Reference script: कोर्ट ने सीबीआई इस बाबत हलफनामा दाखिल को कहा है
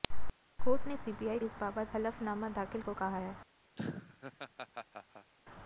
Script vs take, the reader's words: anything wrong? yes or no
no